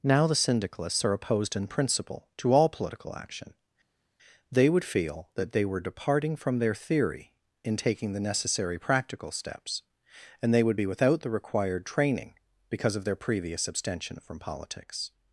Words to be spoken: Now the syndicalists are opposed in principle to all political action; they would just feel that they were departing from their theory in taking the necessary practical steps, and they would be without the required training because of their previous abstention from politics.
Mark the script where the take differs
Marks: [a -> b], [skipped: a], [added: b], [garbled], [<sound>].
Now the syndicalists are opposed in principle to all political action; they would [skipped: just] feel that they were departing from their theory in taking the necessary practical steps, and they would be without the required training because of their previous abstention from politics.